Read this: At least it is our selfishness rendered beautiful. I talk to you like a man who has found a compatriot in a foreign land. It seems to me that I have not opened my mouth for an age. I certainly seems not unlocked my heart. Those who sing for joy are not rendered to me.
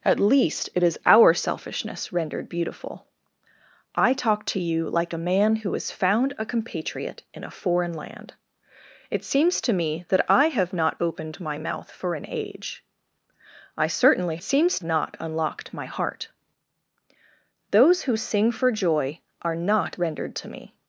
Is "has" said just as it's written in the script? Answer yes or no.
yes